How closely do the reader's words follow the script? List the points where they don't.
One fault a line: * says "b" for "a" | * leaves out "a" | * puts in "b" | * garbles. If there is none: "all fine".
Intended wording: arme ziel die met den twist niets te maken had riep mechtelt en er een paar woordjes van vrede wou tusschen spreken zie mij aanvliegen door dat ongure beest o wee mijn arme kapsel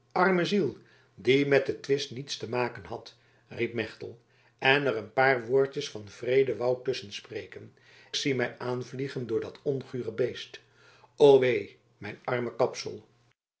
all fine